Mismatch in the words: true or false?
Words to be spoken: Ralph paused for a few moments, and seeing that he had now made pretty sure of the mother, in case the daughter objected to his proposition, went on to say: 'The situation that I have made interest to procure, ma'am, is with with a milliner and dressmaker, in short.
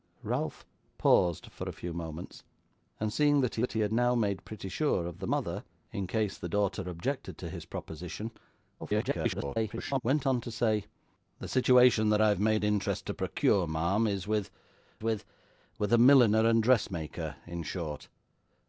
true